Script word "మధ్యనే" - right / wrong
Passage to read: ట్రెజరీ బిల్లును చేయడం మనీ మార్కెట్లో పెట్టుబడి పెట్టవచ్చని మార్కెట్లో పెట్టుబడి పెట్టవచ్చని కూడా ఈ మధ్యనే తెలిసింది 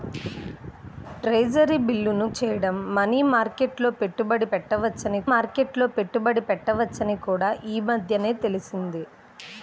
right